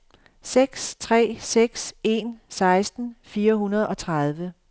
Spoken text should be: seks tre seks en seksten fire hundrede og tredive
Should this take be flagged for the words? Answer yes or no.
no